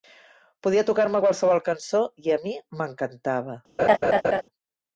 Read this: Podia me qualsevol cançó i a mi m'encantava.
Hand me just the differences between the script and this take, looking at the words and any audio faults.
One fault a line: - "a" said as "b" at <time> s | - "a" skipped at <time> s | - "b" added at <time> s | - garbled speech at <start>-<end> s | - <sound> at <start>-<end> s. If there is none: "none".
- "tocar" added at 0.9 s
- laugh at 3.8-4.4 s